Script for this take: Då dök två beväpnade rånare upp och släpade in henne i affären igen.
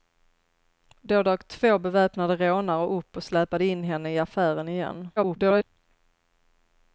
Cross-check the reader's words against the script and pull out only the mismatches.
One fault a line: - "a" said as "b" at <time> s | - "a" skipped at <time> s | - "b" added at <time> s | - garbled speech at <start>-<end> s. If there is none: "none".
- garbled speech at 5.2-5.6 s